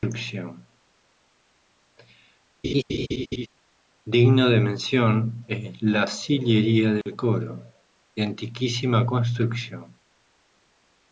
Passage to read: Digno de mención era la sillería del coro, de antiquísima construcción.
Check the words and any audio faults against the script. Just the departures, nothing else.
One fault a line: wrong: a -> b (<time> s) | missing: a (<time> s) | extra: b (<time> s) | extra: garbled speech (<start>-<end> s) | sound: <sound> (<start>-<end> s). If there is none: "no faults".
sound: laugh (2.6-3.5 s)
wrong: era -> es (5.5 s)
sound: dropout (7.0-7.1 s)